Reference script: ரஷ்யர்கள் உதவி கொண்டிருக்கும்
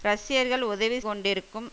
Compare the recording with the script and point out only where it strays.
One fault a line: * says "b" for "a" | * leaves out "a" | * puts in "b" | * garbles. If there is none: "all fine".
all fine